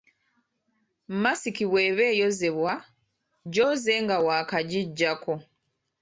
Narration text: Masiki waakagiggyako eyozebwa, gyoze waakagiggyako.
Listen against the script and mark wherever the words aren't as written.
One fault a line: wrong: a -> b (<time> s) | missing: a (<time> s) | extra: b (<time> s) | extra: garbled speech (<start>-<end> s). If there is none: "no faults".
wrong: waakagiggyako -> bw'eba (1.7 s)
extra: nga (4.0 s)